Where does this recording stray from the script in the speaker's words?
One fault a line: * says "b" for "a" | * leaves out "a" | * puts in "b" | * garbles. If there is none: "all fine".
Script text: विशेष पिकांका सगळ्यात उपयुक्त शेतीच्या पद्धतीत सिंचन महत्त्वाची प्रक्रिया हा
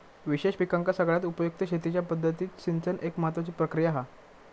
* puts in "एक"